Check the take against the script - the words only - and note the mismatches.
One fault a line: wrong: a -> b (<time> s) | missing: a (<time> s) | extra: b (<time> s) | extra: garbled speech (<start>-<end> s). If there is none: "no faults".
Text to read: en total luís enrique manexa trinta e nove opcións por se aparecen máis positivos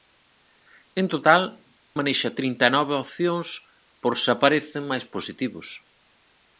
missing: luís enrique (1.4 s)